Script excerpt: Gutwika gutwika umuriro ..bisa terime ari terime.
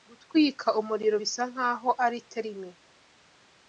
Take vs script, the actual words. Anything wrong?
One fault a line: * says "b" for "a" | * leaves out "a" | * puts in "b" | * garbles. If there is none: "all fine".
* leaves out "gutwika"
* says "nkaho" for "terime"